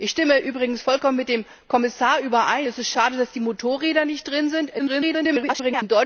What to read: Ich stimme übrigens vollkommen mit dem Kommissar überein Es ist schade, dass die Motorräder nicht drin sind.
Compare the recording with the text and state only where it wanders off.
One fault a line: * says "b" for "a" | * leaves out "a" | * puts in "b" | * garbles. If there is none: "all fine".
* garbles